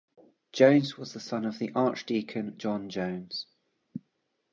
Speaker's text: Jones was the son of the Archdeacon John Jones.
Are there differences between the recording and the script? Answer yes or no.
no